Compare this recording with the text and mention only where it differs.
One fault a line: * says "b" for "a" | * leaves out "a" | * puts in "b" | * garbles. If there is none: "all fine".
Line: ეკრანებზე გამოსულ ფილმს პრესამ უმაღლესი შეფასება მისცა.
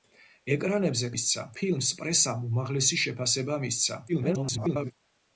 * says "მისცა" for "გამოსულ"
* garbles